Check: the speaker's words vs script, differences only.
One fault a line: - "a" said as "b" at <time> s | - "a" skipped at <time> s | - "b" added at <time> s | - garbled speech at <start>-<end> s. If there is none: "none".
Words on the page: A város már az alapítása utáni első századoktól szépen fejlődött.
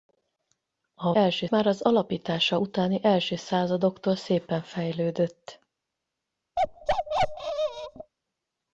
- "város" said as "első" at 1.1 s